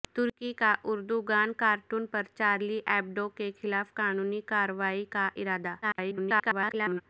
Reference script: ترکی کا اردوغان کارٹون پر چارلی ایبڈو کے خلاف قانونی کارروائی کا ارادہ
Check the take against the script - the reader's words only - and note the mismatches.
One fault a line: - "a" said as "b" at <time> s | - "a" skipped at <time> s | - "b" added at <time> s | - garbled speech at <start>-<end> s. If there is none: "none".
- garbled speech at 5.8-7.0 s